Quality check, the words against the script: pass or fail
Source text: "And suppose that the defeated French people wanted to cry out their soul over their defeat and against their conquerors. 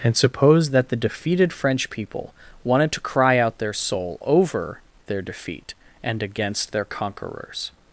pass